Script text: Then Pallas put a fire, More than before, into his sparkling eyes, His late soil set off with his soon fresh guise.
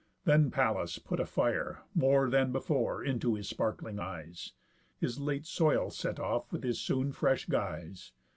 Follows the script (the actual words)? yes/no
yes